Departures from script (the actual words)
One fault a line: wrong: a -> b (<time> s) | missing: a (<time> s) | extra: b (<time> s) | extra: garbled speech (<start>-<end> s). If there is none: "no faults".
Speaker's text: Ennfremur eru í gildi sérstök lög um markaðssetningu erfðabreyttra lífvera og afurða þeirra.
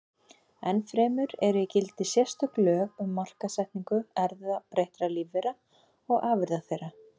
no faults